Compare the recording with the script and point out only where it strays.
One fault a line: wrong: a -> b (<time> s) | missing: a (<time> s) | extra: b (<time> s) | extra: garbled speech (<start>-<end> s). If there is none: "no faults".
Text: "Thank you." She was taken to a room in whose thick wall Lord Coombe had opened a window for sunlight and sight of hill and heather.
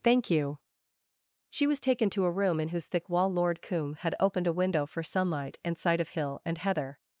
no faults